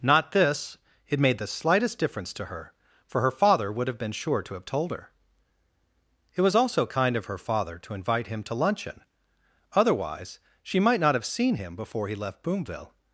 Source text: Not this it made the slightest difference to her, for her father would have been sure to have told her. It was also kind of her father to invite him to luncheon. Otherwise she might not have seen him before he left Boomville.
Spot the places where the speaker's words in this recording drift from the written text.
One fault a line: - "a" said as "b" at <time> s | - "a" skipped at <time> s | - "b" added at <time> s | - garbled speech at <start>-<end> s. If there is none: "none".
none